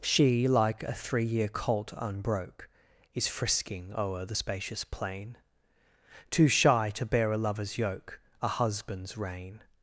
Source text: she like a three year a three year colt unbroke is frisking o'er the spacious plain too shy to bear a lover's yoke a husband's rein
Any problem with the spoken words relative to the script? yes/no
yes